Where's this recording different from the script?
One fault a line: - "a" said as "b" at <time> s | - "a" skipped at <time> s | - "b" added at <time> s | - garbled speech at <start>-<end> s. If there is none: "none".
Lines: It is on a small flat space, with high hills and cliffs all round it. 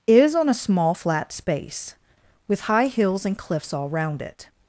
- "It" skipped at 0.1 s